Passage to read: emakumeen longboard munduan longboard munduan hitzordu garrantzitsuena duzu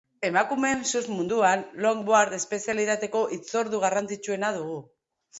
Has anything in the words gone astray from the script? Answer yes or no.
yes